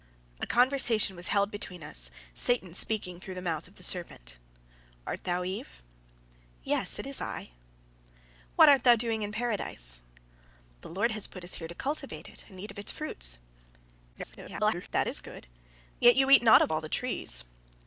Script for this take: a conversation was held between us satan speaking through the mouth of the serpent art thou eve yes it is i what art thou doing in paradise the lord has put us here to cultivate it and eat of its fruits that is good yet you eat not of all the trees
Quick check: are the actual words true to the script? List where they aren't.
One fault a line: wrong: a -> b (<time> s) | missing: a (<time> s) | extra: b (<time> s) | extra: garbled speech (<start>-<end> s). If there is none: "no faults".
extra: garbled speech (14.1-14.9 s)